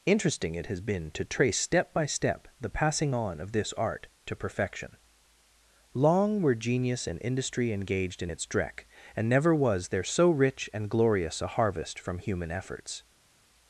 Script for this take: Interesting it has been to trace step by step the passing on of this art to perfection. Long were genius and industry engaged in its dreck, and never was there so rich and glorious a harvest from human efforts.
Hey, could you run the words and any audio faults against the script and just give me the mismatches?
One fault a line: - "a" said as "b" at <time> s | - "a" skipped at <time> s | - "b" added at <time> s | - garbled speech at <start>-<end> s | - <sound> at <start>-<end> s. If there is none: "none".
none